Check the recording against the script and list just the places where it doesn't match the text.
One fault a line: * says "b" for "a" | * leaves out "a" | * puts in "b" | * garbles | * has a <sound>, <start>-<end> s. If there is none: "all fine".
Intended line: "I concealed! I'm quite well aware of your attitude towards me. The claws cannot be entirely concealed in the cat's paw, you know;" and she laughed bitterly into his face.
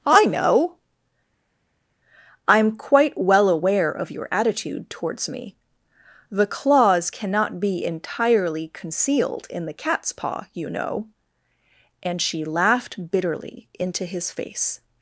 * says "know" for "concealed"